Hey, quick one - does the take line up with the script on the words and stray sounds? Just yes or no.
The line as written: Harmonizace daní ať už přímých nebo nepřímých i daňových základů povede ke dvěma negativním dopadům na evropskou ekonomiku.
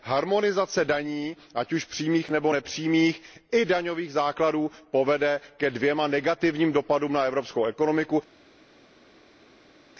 yes